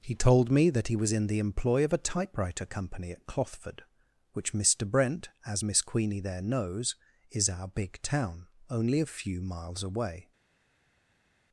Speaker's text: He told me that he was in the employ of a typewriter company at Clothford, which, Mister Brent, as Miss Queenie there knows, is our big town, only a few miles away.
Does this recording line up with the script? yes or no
yes